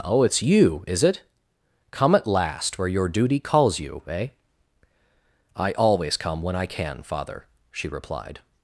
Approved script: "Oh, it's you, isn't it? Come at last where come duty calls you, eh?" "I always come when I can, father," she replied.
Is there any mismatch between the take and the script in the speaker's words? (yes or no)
yes